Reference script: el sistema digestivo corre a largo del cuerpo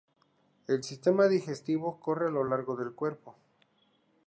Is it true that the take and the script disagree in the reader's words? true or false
true